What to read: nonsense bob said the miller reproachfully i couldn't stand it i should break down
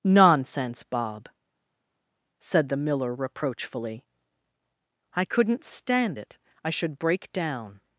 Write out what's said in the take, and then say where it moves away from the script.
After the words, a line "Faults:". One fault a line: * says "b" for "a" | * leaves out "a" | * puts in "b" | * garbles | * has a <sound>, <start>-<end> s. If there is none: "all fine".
nonsense bob said the miller reproachfully i couldn't stand it i should break down
Faults:
all fine